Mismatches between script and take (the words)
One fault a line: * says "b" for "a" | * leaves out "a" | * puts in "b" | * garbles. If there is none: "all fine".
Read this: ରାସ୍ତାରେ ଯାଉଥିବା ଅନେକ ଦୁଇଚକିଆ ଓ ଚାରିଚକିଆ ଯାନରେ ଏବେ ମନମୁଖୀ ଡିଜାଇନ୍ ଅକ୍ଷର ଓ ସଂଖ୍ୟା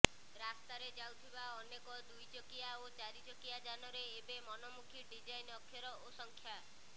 all fine